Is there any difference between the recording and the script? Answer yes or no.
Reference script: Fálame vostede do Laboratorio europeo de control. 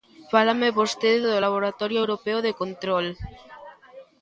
no